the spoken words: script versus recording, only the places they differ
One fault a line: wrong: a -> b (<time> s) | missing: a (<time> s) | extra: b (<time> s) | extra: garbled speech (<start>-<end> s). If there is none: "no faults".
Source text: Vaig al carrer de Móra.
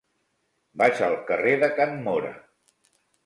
extra: Can (1.8 s)